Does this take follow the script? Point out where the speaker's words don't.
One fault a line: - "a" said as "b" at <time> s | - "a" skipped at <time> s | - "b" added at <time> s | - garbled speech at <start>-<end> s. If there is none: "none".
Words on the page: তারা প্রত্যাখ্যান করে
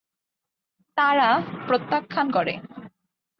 none